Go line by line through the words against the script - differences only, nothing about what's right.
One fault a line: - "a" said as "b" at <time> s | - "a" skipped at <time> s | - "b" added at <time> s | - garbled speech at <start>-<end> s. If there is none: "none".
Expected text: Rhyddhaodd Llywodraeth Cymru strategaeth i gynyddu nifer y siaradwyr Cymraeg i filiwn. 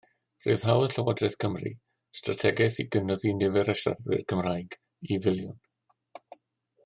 none